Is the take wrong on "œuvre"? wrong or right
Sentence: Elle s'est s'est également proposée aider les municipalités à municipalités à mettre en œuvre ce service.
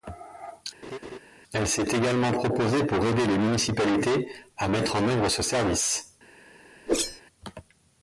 right